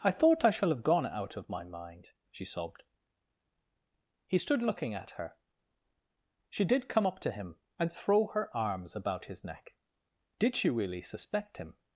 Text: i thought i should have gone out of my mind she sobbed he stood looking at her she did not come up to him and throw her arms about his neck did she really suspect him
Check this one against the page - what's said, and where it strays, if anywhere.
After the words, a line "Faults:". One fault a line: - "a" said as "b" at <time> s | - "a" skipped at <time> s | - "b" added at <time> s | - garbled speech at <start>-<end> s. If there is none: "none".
i thought i shall have gone out of my mind she sobbed he stood looking at her she did come up to him and throw her arms about his neck did she really suspect him
Faults:
- "should" said as "shall" at 0.5 s
- "not" skipped at 6.9 s